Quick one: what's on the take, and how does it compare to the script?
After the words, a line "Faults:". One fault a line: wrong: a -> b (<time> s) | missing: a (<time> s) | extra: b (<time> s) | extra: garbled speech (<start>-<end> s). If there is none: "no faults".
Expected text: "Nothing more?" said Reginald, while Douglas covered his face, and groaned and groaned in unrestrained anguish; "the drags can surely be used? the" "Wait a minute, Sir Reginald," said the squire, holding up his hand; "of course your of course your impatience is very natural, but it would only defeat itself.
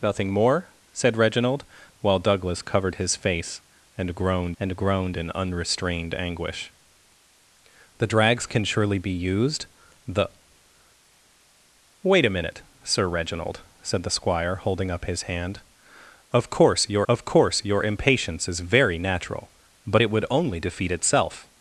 "Nothing more?" said Reginald, while Douglas covered his face, and groaned and groaned in unrestrained anguish; "the drags can surely be used? the" "Wait a minute, Sir Reginald," said the squire, holding up his hand; "of course your of course your impatience is very natural, but it would only defeat itself.
Faults:
no faults